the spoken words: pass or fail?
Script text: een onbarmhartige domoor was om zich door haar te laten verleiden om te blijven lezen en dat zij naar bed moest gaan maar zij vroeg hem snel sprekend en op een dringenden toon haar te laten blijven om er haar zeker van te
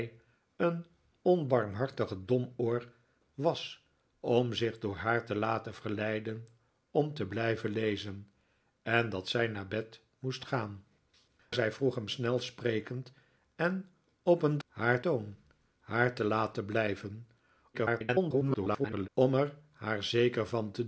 fail